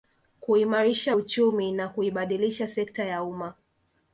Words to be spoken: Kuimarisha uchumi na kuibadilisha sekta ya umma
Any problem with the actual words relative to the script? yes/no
no